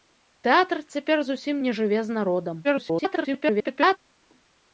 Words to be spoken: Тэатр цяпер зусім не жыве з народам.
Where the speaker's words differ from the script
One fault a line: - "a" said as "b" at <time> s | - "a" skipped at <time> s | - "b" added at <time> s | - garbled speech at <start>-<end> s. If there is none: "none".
- garbled speech at 2.6-4.0 s